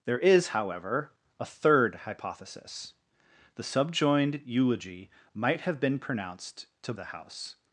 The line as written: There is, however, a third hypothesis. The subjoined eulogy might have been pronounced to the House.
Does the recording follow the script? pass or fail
pass